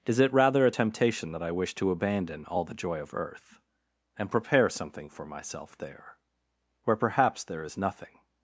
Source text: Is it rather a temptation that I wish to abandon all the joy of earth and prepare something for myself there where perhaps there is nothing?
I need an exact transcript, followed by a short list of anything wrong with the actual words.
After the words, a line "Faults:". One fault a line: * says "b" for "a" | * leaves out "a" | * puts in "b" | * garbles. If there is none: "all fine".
Is it rather a temptation that I wish to abandon all the joy of earth and prepare something for myself there where perhaps there is nothing?
Faults:
all fine